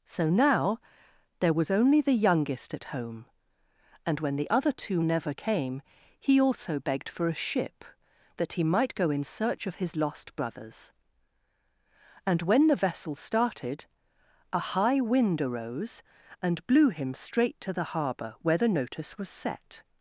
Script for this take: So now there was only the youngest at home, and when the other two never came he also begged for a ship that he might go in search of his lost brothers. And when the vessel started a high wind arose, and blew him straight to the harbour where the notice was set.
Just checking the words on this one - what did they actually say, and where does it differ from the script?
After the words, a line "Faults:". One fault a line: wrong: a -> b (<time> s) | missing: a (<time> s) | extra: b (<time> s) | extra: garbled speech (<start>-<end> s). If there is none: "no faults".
So now there was only the youngest at home, and when the other two never came he also begged for a ship that he might go in search of his lost brothers. And when the vessel started a high wind arose, and blew him straight to the harbour where the notice was set.
Faults:
no faults